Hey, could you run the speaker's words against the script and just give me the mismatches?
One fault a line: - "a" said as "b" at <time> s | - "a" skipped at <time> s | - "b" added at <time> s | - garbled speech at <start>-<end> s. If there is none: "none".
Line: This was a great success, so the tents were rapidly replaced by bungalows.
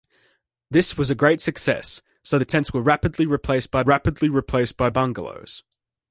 - "rapidly replaced by" added at 3.8 s